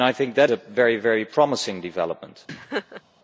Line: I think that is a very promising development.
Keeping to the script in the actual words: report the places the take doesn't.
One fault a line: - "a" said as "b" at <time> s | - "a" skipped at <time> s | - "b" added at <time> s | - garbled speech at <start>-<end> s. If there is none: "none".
- "is" skipped at 0.5 s